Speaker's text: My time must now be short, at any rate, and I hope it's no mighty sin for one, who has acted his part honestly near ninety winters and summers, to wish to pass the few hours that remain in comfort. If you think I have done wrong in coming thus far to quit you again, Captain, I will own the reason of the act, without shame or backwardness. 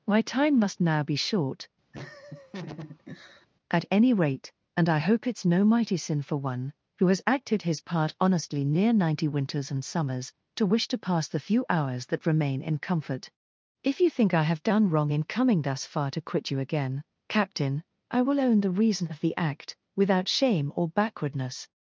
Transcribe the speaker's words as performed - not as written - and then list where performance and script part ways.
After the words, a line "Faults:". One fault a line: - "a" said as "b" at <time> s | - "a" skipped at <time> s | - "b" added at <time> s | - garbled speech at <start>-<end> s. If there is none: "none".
My time must now be short, at any rate, and I hope it's no mighty sin for one, who has acted his part honestly near ninety winters and summers, to wish to pass the few hours that remain in comfort. If you think I have done wrong in coming thus far to quit you again, Captain, I will own the reason of the act, without shame or backwardness.
Faults:
none